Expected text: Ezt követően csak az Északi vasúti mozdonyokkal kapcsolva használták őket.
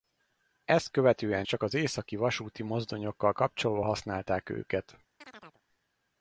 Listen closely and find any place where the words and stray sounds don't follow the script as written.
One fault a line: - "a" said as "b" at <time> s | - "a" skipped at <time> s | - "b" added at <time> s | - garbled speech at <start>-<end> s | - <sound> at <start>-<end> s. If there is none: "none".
- chirp at 5.2-5.6 s